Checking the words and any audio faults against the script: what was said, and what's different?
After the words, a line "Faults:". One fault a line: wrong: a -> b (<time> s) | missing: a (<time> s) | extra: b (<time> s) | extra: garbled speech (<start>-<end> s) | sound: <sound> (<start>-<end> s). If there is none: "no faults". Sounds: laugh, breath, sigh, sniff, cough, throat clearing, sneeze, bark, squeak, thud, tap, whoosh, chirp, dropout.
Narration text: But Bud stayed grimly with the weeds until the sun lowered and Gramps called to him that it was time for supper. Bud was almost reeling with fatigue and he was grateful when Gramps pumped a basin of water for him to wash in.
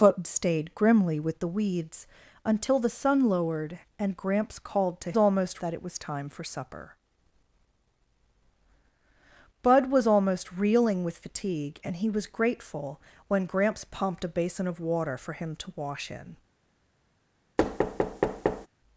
But Stayed grimly with the weeds until the sun lowered and Gramps called to almost that it was time for supper. Bud was almost reeling with fatigue and he was grateful when Gramps pumped a basin of water for him to wash in.
Faults:
missing: Bud (0.2 s)
wrong: him -> almost (5.2 s)
sound: thud (17.6-18.7 s)